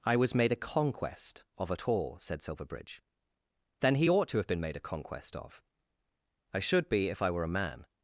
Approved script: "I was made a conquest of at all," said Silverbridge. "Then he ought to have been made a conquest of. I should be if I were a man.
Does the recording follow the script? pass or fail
pass